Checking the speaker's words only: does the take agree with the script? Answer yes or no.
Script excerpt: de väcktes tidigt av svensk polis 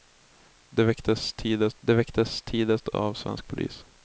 no